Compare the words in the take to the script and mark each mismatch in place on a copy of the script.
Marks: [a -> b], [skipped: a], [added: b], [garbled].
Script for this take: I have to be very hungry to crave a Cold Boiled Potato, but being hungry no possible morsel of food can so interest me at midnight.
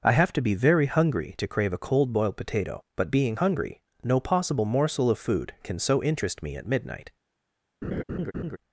I have to be very hungry to crave a Cold Boiled Potato, but being hungry no possible morsel of food can so interest me at midnight.